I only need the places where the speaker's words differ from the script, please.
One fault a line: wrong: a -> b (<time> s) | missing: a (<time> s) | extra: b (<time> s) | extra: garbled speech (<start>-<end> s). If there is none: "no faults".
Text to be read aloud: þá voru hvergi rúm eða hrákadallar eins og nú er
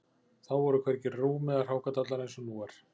no faults